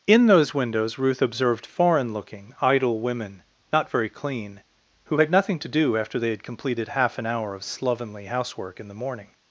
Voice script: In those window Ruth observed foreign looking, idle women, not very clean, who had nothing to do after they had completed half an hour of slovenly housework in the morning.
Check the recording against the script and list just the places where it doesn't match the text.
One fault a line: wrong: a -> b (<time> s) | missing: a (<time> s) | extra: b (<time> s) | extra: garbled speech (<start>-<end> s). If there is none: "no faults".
wrong: window -> windows (0.5 s)